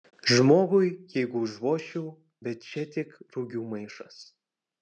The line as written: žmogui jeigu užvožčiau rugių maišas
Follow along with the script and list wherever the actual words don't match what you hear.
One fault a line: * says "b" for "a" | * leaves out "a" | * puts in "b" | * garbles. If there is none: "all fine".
* puts in "bet čia tik"